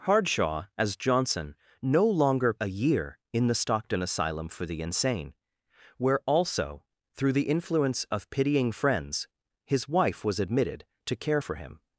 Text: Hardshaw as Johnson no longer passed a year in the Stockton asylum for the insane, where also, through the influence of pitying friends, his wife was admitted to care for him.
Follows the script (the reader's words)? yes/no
no